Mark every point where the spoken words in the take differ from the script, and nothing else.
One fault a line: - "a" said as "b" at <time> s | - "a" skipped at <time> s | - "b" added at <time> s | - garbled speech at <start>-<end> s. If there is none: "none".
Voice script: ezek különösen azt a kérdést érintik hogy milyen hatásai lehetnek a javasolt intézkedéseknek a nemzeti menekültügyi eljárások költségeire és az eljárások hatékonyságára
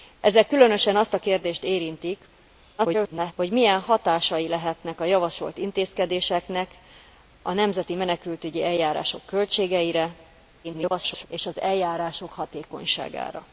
- garbled speech at 2.8-3.3 s
- garbled speech at 10.6-11.3 s